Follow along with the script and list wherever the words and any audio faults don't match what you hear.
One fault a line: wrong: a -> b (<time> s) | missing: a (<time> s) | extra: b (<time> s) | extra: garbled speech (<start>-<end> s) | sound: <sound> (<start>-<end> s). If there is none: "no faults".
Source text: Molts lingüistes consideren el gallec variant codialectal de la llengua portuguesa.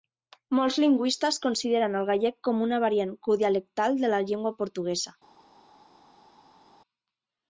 extra: com una (2.5 s)